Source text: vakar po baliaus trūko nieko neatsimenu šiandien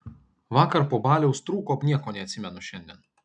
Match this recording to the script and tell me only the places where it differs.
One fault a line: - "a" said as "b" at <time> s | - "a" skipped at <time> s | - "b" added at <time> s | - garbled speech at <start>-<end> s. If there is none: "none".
none